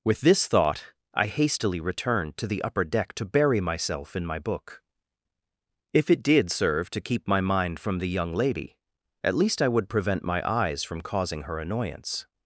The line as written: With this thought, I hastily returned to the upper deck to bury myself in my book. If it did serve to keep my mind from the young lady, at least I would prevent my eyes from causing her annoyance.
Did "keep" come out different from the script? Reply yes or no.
no